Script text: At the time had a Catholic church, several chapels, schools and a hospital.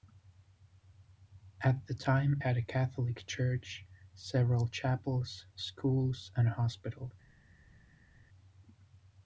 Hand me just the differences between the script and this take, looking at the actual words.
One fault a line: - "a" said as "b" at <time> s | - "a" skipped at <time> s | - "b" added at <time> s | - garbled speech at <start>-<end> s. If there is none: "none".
none